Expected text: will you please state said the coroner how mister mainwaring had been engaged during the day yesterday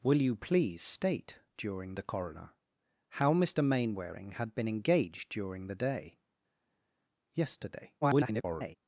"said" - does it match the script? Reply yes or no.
no